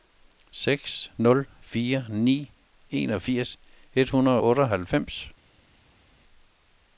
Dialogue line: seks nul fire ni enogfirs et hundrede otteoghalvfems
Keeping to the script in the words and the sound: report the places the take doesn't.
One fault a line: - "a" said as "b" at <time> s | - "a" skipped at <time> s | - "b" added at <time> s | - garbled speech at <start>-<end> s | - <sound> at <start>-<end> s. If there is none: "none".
none